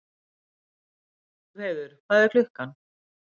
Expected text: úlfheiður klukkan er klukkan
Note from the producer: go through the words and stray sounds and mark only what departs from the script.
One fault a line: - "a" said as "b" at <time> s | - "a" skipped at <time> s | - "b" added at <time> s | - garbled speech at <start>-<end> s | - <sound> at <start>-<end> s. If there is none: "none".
- "klukkan" said as "hvað" at 2.1 s